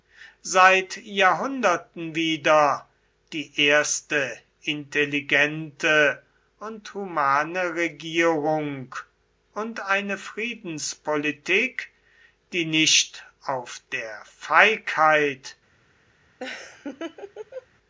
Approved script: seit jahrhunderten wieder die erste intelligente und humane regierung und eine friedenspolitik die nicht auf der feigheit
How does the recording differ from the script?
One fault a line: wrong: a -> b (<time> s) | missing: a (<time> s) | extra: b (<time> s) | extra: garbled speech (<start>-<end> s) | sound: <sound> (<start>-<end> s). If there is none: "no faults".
sound: laugh (16.4-17.7 s)